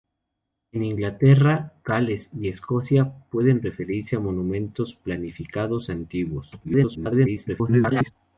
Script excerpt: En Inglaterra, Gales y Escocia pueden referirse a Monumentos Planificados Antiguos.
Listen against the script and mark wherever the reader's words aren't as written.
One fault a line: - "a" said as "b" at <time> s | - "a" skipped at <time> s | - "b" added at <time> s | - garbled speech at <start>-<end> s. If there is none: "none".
- garbled speech at 6.6-8.1 s